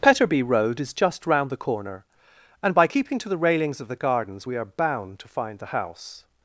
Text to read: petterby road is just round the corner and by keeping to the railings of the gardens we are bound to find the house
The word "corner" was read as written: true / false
true